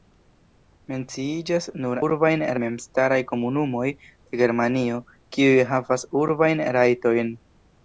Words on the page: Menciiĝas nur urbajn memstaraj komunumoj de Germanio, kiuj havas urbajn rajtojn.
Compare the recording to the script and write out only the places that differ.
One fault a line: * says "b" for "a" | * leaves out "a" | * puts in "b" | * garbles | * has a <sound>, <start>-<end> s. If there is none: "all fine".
all fine